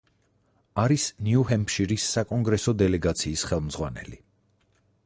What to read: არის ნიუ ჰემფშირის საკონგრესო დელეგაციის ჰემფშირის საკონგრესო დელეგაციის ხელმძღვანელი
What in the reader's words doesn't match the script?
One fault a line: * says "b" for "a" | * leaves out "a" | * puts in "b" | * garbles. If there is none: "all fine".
* leaves out "ჰემფშირის საკონგრესო დელეგაციის"